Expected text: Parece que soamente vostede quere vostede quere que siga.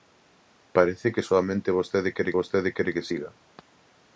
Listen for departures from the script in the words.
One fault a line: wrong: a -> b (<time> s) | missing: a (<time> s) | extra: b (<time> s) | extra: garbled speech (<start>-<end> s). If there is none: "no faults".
no faults